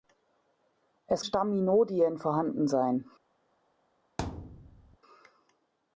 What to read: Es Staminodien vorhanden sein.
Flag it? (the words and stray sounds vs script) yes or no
yes